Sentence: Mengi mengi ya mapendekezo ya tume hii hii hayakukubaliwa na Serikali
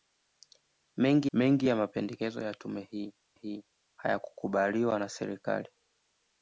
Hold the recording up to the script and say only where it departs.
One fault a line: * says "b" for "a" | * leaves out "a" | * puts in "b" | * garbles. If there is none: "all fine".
all fine